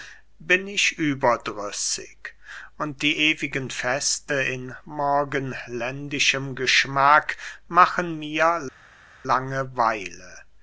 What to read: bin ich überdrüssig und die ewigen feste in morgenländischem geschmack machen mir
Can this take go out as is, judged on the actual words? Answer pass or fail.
pass